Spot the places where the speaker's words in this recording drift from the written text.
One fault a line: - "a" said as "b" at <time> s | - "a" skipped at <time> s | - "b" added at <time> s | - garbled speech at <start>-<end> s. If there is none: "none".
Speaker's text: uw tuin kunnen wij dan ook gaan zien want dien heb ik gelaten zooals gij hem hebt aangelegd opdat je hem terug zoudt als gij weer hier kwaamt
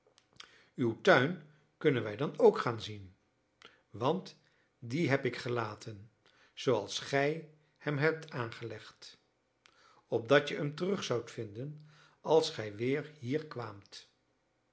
- "vinden" added at 11.3 s